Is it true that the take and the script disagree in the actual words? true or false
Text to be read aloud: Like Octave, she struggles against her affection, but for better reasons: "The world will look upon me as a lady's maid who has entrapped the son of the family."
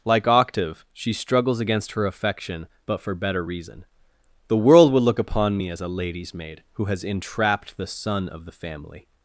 true